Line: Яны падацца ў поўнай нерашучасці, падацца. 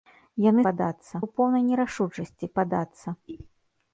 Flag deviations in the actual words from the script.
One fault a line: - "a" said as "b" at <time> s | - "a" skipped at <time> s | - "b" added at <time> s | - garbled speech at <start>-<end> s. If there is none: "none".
none